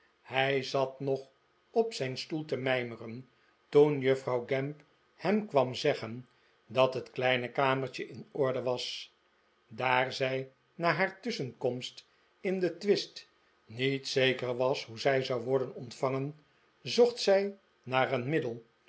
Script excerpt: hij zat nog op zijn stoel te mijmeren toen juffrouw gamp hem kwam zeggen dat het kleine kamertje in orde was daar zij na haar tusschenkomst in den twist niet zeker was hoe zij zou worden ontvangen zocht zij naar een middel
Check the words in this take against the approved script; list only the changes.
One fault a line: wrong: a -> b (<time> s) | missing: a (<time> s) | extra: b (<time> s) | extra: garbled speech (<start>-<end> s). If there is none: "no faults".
no faults